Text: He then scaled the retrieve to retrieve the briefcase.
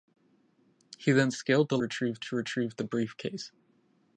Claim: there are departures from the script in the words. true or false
false